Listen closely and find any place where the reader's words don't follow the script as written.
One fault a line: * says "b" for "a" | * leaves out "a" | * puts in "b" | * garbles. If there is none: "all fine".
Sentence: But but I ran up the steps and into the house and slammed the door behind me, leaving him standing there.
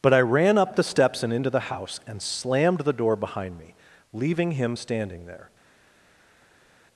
* leaves out "but"